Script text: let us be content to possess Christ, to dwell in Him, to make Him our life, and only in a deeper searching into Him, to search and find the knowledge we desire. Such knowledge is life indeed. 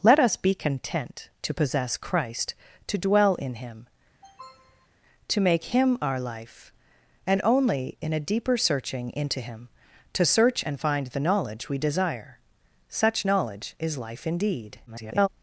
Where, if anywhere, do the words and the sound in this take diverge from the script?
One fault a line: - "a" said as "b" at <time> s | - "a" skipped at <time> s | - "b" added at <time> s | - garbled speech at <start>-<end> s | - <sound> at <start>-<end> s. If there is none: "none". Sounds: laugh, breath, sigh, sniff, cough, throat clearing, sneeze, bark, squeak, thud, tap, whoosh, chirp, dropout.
- sniff at 4.2-4.9 s
- garbled speech at 14.9-15.3 s